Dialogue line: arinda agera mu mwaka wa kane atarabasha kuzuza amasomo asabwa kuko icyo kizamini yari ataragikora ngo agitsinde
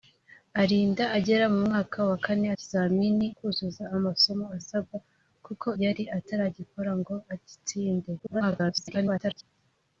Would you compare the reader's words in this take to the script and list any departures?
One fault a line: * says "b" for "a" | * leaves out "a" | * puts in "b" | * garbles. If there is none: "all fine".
* says "kizamini" for "atarabasha"
* leaves out "icyo kizamini"
* garbles